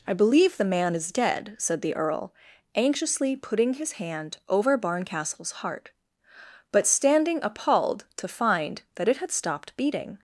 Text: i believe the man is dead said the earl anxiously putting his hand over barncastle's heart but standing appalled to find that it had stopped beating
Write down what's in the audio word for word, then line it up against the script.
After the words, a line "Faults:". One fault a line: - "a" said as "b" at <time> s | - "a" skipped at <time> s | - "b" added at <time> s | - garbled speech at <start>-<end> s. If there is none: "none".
i believe the man is dead said the earl anxiously putting his hand over barncastle's heart but standing appalled to find that it had stopped beating
Faults:
none